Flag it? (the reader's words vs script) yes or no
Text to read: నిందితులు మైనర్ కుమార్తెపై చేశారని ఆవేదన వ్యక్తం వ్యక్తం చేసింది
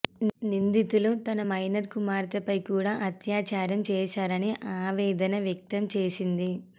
yes